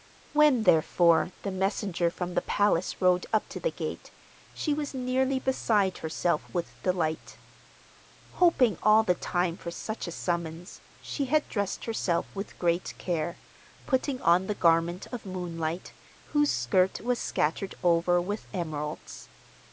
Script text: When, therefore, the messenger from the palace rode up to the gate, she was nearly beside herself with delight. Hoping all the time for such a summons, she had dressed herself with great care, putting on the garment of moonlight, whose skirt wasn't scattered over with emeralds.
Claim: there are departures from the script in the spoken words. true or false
true